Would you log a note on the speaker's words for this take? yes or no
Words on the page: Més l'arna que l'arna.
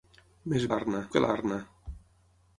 no